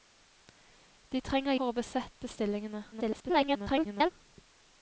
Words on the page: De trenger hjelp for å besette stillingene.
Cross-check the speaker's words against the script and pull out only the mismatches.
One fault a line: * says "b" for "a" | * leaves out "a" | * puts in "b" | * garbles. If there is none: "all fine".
* leaves out "hjelp"
* garbles